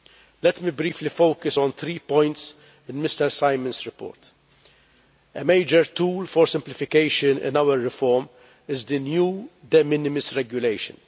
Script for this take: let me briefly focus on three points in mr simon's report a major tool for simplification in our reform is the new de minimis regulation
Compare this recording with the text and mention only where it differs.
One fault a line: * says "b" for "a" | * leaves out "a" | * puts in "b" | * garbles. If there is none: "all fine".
all fine